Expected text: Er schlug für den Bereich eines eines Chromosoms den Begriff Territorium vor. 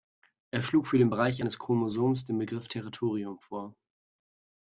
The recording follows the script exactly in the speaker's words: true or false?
false